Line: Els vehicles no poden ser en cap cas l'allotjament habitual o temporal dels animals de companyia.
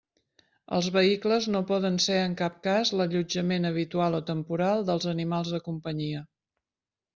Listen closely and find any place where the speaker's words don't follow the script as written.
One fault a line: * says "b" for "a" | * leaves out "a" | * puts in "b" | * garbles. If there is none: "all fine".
all fine